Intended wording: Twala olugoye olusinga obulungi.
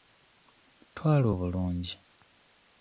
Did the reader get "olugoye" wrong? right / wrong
wrong